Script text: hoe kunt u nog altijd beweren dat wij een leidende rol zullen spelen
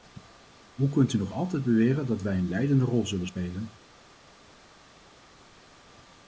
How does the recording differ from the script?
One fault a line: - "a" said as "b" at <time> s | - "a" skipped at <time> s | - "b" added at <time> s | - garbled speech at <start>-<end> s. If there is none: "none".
none